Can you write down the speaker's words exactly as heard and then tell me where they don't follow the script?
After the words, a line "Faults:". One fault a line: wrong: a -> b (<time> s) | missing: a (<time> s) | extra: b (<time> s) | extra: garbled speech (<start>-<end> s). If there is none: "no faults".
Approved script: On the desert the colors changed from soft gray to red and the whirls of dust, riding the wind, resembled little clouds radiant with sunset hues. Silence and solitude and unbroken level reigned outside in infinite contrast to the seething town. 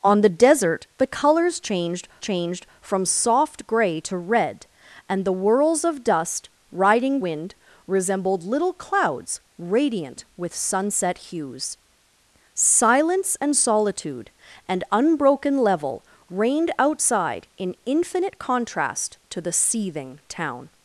On the desert the colors changed changed from soft gray to red and the whirls of dust, riding wind, resembled little clouds radiant with sunset hues. Silence and solitude and unbroken level reigned outside in infinite contrast to the seething town.
Faults:
extra: changed (2.2 s)
missing: the (7.2 s)